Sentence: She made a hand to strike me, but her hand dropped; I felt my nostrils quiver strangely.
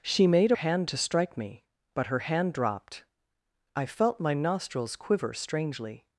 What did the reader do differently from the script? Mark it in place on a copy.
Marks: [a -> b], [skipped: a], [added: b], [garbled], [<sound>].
She made a hand to strike me, but her hand dropped; I felt my nostrils quiver strangely.